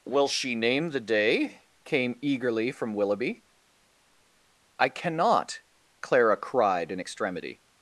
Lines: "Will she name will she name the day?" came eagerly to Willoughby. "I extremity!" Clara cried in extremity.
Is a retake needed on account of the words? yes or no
yes